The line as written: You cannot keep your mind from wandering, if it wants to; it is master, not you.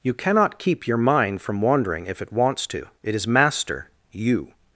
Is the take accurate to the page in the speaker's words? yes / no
no